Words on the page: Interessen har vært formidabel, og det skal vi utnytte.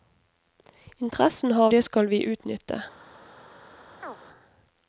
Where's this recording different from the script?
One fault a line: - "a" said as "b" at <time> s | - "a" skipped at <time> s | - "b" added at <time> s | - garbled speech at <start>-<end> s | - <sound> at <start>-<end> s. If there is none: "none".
- "vært formidabel og" skipped at 1.7 s
- chirp at 4.0-4.2 s